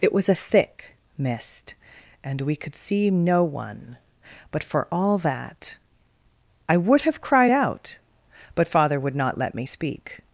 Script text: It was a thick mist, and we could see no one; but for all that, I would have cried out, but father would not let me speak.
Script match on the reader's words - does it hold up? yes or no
yes